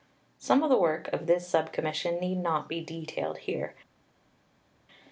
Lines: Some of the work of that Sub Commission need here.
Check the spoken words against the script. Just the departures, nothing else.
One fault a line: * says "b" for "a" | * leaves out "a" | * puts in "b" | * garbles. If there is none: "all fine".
* says "this" for "that"
* puts in "not be detailed"